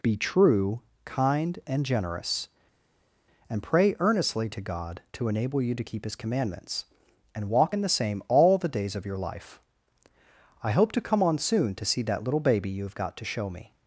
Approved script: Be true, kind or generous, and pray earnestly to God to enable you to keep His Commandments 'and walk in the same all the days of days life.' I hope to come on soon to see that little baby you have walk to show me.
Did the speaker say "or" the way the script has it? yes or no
no